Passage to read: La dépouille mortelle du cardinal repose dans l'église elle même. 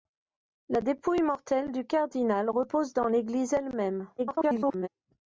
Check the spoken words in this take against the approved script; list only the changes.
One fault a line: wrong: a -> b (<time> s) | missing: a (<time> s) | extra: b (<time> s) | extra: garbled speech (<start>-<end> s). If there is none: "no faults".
extra: garbled speech (4.2-4.9 s)